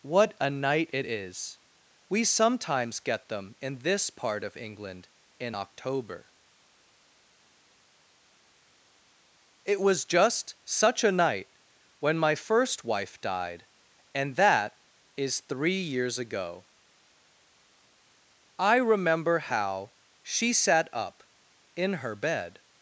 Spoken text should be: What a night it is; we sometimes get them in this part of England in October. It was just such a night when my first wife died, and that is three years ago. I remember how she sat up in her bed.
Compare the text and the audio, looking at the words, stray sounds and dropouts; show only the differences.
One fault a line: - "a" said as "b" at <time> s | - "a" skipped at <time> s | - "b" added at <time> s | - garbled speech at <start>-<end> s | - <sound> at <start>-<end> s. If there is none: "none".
none